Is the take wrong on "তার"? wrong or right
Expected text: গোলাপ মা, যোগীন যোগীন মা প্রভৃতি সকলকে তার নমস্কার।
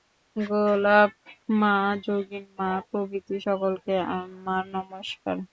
wrong